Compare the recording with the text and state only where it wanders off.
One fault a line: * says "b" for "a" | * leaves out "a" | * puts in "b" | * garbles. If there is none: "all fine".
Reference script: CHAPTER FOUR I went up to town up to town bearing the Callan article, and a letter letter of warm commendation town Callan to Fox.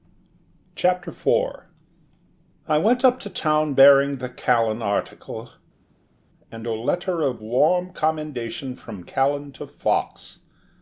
* leaves out "up to town"
* leaves out "letter"
* says "from" for "town"